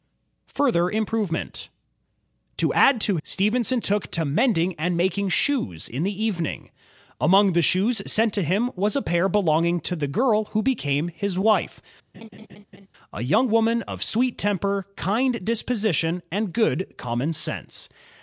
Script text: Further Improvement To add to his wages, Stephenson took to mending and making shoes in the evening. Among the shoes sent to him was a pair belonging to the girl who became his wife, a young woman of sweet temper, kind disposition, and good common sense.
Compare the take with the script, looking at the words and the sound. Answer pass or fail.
fail